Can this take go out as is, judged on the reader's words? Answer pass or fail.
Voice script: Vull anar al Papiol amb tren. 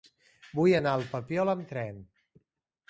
pass